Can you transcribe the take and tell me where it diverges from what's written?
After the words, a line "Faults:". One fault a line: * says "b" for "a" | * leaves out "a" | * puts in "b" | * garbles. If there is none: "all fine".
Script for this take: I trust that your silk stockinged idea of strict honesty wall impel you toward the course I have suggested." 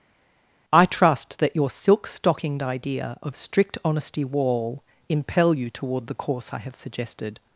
I trust that your silk stockinged idea of strict honesty wall impel you toward the course I have suggested."
Faults:
all fine